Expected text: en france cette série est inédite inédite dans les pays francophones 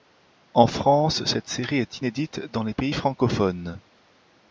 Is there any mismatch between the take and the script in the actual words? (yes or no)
yes